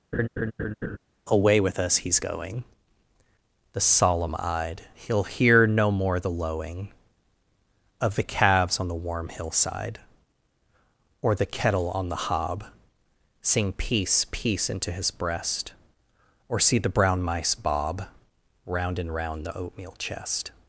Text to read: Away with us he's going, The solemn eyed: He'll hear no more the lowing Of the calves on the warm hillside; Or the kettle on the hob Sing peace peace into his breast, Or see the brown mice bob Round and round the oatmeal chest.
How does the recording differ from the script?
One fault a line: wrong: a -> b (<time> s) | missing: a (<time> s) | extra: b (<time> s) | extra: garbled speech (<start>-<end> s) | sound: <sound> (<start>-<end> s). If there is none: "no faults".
sound: laugh (0.1-1.0 s)